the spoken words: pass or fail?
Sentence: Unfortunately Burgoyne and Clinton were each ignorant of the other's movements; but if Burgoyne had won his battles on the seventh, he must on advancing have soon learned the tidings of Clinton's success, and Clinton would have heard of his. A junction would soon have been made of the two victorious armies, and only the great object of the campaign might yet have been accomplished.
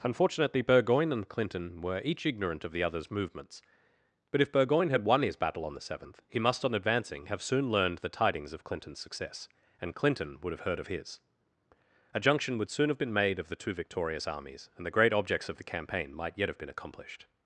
fail